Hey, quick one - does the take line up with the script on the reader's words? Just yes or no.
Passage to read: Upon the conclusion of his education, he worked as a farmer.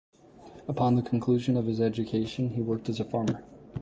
yes